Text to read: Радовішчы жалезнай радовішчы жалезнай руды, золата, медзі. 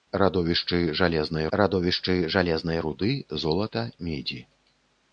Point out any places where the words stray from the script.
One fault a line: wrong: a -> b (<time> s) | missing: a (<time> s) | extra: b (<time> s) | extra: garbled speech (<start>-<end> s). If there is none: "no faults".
no faults